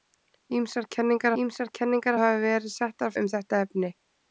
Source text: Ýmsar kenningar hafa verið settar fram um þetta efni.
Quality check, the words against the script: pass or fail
fail